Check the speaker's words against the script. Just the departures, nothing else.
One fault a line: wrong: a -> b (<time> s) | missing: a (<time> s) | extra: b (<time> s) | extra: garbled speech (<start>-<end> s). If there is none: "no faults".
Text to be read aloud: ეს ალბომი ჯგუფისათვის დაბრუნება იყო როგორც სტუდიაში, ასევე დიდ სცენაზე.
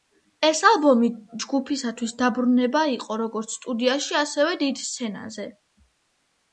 no faults